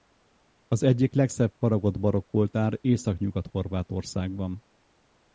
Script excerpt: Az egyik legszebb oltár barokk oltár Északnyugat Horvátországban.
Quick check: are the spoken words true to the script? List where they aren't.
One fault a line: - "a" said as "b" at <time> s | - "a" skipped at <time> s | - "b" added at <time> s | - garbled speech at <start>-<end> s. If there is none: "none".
- "oltár" said as "faragott" at 1.6 s